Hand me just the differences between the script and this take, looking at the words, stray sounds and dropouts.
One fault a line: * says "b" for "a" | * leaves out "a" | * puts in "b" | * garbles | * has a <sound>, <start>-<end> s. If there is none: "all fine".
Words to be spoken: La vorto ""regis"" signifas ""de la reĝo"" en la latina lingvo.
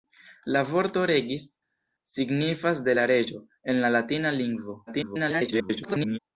* garbles